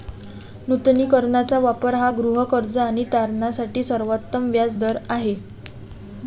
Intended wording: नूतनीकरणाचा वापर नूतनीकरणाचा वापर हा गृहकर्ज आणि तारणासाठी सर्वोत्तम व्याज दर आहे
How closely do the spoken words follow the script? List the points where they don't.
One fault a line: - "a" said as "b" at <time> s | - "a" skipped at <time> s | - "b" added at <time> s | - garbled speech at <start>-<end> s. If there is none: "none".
- "नूतनीकरणाचा वापर" skipped at 1.9 s